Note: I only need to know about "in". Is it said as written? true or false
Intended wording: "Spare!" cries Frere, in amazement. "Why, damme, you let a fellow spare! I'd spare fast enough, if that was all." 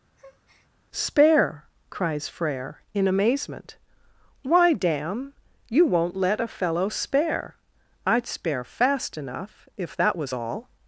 true